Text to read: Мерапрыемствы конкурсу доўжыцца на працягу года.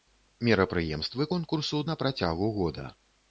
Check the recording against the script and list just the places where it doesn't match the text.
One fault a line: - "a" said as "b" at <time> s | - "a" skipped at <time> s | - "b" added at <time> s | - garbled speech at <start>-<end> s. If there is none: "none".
- "доўжыцца" skipped at 1.8 s